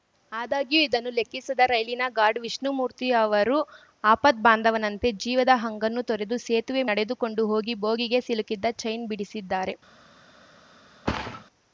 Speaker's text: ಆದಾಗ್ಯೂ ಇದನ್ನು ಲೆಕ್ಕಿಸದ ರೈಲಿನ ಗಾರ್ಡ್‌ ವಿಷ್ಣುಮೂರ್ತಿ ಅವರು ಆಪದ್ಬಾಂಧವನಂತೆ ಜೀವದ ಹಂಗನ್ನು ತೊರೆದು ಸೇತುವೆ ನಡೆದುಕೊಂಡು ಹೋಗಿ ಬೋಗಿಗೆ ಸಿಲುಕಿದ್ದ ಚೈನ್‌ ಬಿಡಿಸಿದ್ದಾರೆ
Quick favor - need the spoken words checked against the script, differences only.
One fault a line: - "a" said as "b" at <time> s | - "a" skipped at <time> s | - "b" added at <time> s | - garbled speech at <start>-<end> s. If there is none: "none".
none